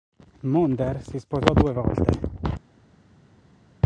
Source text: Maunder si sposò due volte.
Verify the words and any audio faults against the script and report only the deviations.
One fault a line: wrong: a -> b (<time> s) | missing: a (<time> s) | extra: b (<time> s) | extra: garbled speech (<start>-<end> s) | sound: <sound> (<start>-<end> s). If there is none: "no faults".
no faults